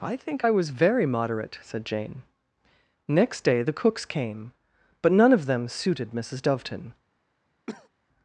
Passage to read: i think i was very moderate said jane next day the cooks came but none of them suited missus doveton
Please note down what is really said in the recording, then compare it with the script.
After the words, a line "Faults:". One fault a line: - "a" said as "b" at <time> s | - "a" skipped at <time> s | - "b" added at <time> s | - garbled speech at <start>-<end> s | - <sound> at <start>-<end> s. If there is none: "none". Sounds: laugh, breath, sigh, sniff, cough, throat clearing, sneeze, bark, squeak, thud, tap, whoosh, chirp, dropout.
i think i was very moderate said jane next day the cooks came but none of them suited missus doveton
Faults:
- cough at 7.7-7.9 s